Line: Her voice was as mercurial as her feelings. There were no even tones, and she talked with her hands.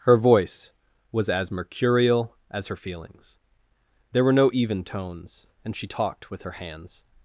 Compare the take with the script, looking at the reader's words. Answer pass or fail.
pass